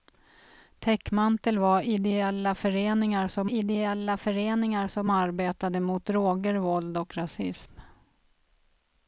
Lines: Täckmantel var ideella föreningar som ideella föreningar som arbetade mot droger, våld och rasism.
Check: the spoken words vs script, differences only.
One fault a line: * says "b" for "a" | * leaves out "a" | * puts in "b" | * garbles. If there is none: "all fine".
all fine